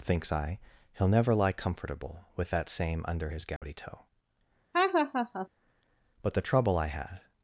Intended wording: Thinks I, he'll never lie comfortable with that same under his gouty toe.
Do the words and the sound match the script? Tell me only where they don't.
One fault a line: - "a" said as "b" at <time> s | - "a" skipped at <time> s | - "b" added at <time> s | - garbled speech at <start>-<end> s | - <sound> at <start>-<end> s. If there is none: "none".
- dropout at 3.6-3.6 s
- laugh at 4.7-5.5 s
- "But the trouble I had" added at 6.2 s